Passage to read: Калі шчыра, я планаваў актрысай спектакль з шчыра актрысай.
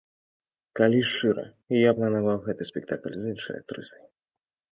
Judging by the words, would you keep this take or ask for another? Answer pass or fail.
fail